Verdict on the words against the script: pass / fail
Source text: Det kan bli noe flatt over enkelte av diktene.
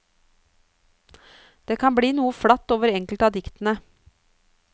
pass